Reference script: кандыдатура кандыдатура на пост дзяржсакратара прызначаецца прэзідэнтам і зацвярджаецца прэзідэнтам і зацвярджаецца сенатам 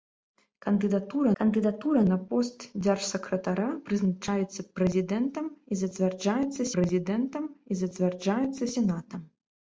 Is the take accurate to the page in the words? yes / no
yes